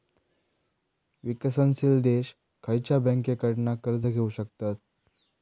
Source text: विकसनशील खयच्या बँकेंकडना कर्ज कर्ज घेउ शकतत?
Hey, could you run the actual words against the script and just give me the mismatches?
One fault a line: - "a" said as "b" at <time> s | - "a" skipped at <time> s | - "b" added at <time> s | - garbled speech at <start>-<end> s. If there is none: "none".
- "देश" added at 2.0 s
- "कर्ज" skipped at 4.1 s